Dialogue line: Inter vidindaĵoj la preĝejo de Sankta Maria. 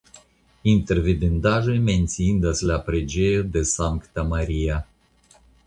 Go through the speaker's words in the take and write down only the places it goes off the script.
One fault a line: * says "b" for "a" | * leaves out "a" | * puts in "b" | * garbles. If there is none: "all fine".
* puts in "menciindas"